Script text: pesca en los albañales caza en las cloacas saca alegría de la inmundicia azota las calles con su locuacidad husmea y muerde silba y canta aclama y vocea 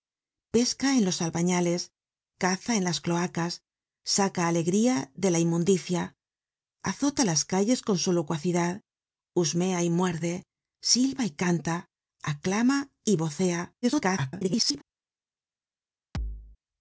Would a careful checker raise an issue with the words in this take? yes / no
yes